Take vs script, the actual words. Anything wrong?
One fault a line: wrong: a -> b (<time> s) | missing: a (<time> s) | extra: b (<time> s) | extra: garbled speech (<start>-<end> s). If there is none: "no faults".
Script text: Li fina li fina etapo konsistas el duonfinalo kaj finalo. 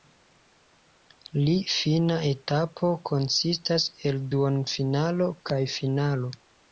missing: li fina (2.1 s)